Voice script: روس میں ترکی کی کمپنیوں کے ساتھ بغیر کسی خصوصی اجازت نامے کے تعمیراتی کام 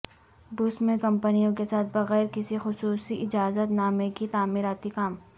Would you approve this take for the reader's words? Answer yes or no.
no